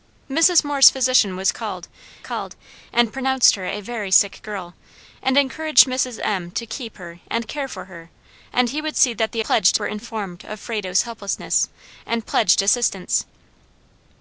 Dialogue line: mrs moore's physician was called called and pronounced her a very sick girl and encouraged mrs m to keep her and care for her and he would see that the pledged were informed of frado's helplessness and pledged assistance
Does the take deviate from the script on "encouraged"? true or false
false